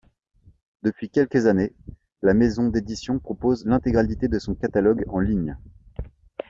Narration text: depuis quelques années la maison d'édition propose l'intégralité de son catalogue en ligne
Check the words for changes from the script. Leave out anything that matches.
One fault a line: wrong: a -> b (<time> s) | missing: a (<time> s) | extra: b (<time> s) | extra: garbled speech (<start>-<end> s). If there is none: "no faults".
no faults